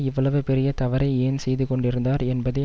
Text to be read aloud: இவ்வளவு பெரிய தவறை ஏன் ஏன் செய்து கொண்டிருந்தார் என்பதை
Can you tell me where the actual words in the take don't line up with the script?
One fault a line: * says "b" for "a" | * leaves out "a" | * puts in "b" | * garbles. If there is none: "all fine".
* leaves out "ஏன்"